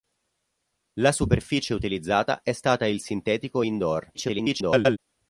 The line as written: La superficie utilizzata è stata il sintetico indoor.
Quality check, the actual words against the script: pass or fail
fail